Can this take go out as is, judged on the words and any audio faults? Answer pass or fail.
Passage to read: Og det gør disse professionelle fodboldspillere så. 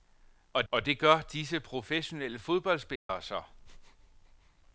fail